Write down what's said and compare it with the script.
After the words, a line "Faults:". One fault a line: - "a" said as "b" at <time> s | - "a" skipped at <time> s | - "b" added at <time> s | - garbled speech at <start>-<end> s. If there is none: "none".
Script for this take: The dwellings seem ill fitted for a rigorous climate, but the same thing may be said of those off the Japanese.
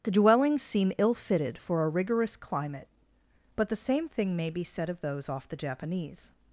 The dwellings seem ill fitted for a rigorous climate, but the same thing may be said of those off the Japanese.
Faults:
none